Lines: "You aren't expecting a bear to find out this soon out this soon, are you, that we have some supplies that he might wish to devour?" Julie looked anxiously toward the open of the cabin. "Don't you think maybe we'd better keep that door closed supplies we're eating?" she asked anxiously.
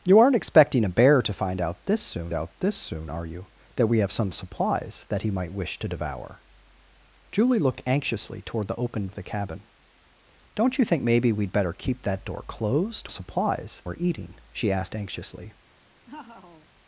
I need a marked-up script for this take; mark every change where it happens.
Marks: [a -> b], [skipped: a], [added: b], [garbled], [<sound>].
"You aren't expecting a bear to find out this soon out this soon, are you, that we have some supplies that he might wish to devour?" Julie looked anxiously toward the open of the cabin. "Don't you think maybe we'd better keep that door closed supplies we're eating?" she asked anxiously. [laugh]